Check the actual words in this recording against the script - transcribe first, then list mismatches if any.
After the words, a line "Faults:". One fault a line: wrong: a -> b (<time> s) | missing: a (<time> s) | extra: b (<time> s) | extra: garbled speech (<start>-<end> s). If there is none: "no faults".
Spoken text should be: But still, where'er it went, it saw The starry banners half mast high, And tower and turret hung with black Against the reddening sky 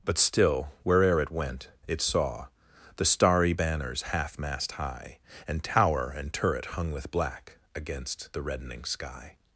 But still, where'er it went, it saw The starry banners half mast high, And tower and turret hung with black Against the reddening sky
Faults:
no faults